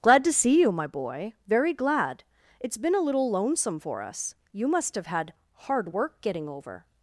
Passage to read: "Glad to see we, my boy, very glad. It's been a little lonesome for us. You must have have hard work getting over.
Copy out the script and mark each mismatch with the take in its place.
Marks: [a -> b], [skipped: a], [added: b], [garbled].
"Glad to see [we, -> you] my boy, very glad. It's been a little lonesome for us. You must have [have -> had] hard work getting over.